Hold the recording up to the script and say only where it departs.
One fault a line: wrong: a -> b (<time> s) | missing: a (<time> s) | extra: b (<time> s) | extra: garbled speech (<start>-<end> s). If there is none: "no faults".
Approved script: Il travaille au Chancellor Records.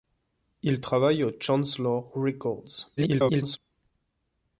extra: garbled speech (3.0-3.6 s)